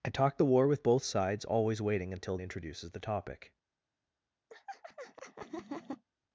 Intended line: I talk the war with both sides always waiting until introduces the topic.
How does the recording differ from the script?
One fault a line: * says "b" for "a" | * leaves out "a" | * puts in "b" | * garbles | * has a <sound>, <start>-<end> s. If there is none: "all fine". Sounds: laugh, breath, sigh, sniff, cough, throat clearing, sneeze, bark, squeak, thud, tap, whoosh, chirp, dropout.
* has a laugh, 4.5-6.0 s